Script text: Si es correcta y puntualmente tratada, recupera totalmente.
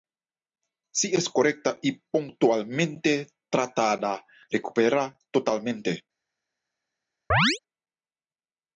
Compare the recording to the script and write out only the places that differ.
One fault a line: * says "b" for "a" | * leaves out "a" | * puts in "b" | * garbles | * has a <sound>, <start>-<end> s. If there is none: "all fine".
* has a chirp, 7.3-7.6 s